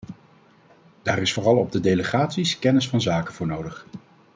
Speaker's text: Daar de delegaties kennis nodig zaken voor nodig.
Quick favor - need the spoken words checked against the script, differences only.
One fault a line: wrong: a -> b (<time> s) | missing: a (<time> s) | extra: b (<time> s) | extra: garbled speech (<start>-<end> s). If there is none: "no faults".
extra: is vooral op (1.2 s)
wrong: nodig -> van (2.9 s)